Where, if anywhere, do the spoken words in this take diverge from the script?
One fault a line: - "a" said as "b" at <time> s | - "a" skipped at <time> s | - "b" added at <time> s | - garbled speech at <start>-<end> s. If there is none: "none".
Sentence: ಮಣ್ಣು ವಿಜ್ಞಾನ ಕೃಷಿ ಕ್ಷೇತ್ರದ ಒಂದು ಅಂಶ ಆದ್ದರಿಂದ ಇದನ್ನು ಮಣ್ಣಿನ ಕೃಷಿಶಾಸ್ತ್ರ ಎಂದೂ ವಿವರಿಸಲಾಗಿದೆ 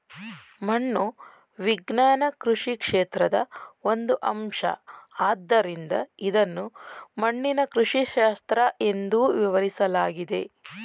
none